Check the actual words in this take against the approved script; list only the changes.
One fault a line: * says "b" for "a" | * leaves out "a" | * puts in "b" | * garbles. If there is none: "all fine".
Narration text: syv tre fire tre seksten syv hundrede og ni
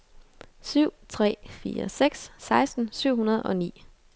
* says "seks" for "tre"